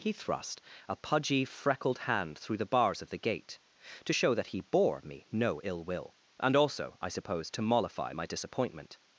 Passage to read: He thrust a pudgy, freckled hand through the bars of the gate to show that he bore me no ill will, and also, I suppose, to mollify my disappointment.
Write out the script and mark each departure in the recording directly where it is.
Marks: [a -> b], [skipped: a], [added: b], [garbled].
He thrust a pudgy, freckled hand through the bars of the gate to show that he bore me no ill will, and also, I suppose, to mollify my disappointment.